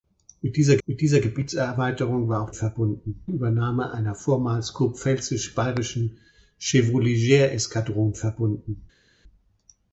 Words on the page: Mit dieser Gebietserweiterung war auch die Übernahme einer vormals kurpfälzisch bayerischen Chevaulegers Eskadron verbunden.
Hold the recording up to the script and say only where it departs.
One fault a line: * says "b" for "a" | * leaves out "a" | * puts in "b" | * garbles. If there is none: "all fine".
* puts in "mit dieser"
* says "verbunden" for "die"